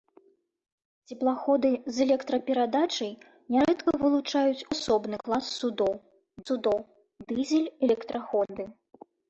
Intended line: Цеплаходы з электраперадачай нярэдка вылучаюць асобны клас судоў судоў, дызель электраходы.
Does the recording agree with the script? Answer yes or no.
yes